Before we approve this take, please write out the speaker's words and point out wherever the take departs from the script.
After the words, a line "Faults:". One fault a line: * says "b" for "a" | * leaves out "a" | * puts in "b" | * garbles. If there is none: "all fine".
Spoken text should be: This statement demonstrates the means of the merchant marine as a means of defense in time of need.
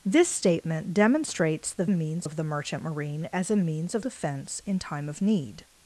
This statement demonstrates the means of the merchant marine as a means of defense in time of need.
Faults:
all fine